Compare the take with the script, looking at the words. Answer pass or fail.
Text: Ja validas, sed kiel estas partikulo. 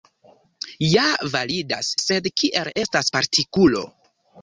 pass